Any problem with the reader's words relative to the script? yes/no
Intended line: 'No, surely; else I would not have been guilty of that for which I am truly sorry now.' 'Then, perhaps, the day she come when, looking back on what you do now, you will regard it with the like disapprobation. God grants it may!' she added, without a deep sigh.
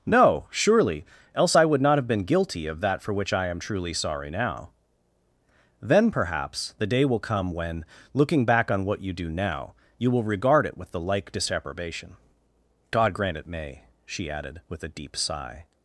yes